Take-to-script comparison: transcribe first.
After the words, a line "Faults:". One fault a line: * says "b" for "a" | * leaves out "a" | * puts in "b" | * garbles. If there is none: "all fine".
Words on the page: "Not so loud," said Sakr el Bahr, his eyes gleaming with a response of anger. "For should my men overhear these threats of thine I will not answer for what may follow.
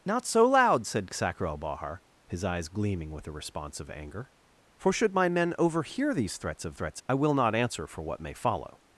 "Not so loud," said Sakr el Bahr, his eyes gleaming with a response of anger. "For should my men overhear these threats of threats I will not answer for what may follow.
Faults:
* says "threats" for "thine"